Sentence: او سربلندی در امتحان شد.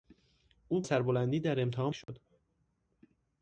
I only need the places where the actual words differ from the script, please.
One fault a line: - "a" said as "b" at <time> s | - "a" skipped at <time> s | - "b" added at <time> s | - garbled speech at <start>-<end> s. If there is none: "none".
none